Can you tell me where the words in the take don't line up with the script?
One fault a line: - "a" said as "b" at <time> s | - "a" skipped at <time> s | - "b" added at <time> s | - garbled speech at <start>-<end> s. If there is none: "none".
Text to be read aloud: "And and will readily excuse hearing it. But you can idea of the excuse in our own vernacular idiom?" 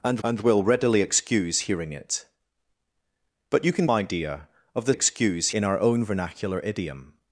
none